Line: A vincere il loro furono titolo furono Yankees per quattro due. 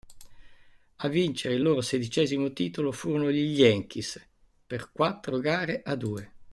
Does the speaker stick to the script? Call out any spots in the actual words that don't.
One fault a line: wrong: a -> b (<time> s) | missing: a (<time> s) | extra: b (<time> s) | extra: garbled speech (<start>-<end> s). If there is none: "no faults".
wrong: furono -> sedicesimo (1.8 s)
extra: gli (3.3 s)
extra: gare a (5.4 s)